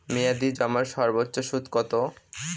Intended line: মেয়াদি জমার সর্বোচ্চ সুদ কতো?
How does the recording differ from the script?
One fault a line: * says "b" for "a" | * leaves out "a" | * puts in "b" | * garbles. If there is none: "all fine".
all fine